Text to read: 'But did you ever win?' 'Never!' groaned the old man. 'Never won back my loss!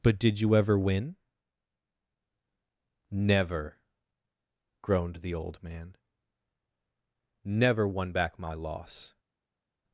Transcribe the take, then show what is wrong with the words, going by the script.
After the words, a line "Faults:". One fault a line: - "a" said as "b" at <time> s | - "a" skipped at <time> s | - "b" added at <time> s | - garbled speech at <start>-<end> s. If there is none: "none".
'But did you ever win?' 'Never!' groaned the old man. 'Never won back my loss!
Faults:
none